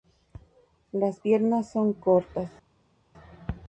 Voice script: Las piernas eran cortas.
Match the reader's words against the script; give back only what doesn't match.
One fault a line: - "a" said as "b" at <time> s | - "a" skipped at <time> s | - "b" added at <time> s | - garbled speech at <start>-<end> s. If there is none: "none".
- "eran" said as "son" at 1.7 s